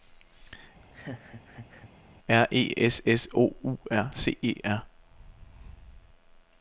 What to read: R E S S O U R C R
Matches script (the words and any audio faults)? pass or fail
fail